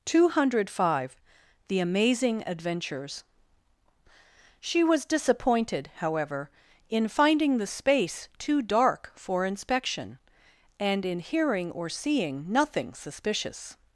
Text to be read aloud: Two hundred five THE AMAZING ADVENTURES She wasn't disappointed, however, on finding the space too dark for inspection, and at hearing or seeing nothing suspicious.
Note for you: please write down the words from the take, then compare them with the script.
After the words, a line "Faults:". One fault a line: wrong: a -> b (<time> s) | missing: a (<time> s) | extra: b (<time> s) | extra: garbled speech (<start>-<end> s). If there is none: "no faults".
Two hundred five THE AMAZING ADVENTURES She was disappointed, however, in finding the space too dark for inspection, and in hearing or seeing nothing suspicious.
Faults:
wrong: wasn't -> was (4.8 s)
wrong: on -> in (6.9 s)
wrong: at -> in (11.1 s)